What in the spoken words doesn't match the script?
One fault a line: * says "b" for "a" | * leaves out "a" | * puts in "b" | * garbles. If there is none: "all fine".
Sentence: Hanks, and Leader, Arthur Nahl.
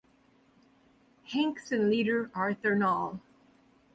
all fine